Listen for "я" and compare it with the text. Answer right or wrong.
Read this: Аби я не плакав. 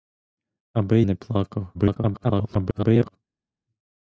wrong